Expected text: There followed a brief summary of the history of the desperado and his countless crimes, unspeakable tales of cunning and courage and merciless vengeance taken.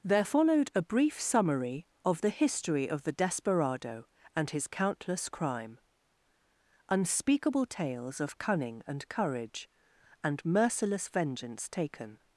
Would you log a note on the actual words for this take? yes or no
yes